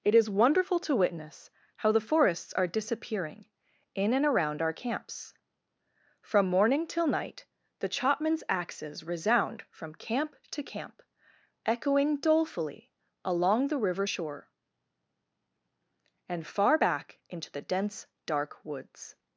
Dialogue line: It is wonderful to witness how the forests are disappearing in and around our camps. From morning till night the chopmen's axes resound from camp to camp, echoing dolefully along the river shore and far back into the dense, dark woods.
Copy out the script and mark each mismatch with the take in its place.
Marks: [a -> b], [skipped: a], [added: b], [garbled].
It is wonderful to witness how the forests are disappearing in and around our camps. From morning till night the chopmen's axes resound from camp to camp, echoing dolefully along the river shore and far back into the dense, dark woods.